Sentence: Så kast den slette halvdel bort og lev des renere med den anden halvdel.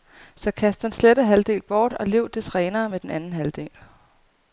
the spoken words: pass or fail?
pass